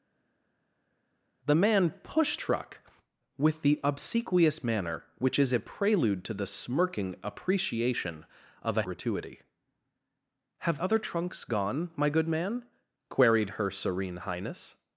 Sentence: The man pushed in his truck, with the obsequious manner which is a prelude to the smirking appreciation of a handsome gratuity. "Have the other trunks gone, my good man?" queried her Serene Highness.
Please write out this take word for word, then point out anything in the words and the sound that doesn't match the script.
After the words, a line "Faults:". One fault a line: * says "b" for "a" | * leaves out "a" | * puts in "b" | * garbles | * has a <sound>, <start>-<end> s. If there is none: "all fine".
The man pushed truck, with the obsequious manner which is a prelude to the smirking appreciation of a gratuity. "Have other trunks gone, my good man?" queried her Serene Highness.
Faults:
* leaves out "in his"
* leaves out "handsome"
* leaves out "the"